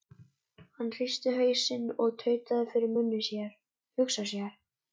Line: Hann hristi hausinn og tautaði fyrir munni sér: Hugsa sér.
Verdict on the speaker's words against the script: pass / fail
pass